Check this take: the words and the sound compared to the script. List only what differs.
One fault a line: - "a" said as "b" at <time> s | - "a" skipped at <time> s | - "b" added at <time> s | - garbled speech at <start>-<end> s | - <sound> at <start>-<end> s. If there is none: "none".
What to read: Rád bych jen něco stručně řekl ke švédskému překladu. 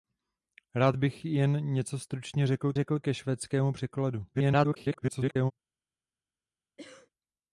- "řekl" added at 2.7 s
- garbled speech at 4.3-5.5 s
- cough at 6.8-7.1 s